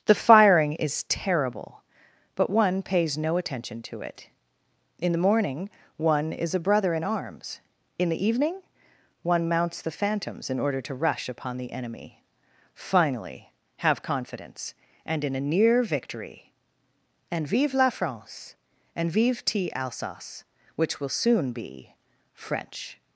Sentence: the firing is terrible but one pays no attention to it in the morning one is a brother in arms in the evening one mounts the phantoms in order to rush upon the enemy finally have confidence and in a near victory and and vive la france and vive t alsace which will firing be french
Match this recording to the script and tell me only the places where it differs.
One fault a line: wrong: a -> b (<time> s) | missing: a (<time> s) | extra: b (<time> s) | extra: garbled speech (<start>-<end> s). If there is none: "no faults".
missing: and (17.5 s)
wrong: firing -> soon (21.1 s)